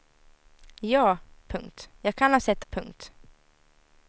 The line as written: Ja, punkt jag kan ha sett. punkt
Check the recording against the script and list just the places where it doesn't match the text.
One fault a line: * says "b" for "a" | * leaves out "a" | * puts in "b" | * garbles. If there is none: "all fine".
all fine